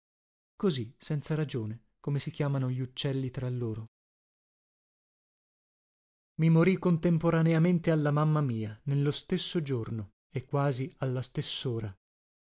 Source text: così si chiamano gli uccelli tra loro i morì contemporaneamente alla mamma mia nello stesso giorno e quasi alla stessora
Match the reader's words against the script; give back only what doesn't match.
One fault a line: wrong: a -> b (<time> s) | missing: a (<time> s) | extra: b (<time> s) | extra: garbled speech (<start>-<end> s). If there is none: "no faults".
extra: senza ragione come (1.0 s)